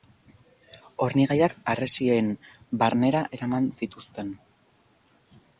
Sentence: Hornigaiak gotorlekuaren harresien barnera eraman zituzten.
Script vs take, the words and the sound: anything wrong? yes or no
yes